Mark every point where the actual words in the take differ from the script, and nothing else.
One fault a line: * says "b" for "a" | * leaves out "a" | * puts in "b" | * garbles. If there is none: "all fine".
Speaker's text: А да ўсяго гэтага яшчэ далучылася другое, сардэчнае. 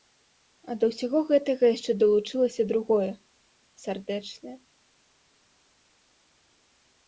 all fine